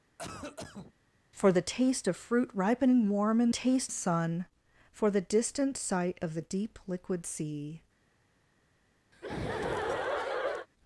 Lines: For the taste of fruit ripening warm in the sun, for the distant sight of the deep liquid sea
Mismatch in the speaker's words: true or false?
true